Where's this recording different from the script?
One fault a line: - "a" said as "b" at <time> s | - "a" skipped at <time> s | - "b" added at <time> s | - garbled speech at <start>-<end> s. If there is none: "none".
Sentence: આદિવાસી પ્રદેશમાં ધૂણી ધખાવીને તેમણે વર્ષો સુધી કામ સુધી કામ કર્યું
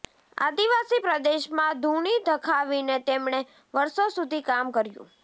- "સુધી કામ" skipped at 4.7 s